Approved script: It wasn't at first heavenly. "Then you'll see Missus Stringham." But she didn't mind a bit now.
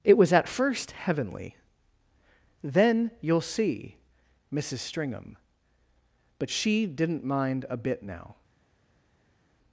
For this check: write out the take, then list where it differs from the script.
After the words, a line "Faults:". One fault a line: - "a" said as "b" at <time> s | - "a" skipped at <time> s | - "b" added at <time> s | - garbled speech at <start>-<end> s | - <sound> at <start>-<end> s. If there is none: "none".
It was at first heavenly. "Then you'll see Missus Stringham." But she didn't mind a bit now.
Faults:
- "wasn't" said as "was" at 0.2 s